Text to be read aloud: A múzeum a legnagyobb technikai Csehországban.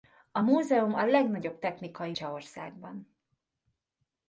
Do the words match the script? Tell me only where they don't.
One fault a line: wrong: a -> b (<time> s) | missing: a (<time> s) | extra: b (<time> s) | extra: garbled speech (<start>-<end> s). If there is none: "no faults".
no faults